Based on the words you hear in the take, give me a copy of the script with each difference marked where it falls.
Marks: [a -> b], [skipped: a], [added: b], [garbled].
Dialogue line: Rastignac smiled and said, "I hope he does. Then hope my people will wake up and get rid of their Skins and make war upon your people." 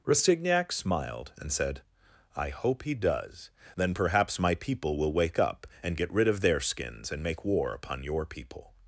Rastignac smiled and said, "I hope he does. Then [hope -> perhaps] my people will wake up and get rid of their Skins and make war upon your people."